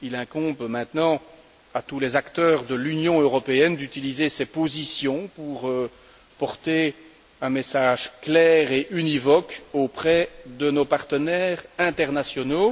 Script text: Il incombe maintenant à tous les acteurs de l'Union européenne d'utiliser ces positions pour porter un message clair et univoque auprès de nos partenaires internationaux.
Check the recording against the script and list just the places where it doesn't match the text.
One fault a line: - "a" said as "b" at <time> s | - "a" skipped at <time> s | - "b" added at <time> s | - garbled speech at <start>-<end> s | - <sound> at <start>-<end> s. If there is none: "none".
none